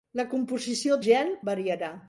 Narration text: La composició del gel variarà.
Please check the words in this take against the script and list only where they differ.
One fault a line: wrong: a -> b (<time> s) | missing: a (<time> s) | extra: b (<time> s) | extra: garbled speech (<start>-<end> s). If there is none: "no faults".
missing: del (1.0 s)